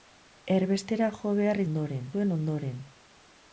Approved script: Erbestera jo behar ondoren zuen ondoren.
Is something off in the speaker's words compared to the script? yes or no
no